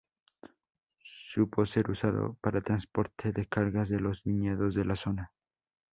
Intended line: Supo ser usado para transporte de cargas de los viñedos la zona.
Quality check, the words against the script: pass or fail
fail